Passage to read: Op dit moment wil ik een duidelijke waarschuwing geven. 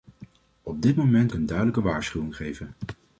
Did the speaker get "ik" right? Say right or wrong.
wrong